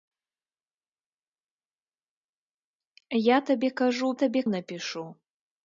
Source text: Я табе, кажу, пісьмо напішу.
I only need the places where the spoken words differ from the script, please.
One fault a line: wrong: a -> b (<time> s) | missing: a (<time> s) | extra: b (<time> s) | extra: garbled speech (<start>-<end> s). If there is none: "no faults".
wrong: пісьмо -> табе (4.1 s)